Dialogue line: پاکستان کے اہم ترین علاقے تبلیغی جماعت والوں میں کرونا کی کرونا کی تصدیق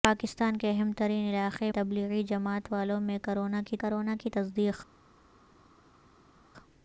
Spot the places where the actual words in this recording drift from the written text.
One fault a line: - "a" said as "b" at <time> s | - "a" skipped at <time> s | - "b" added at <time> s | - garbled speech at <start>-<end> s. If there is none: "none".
none